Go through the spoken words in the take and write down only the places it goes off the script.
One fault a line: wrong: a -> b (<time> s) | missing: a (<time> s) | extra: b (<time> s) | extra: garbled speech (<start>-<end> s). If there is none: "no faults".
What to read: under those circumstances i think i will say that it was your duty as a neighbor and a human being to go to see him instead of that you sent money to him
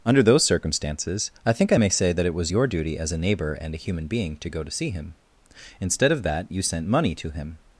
wrong: will -> may (1.8 s)